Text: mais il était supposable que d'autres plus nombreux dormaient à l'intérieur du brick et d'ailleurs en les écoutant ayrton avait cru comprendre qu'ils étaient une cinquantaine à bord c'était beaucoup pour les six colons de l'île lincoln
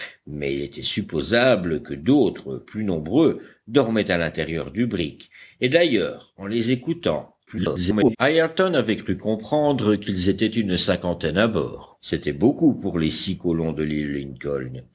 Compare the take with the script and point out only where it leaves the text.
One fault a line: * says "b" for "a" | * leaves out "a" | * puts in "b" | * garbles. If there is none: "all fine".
* leaves out "il"
* garbles